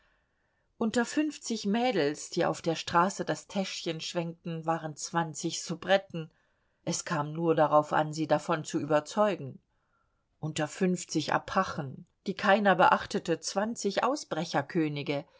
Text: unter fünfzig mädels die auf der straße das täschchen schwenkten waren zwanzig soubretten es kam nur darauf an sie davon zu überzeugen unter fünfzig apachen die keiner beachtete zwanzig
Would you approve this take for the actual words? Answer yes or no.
yes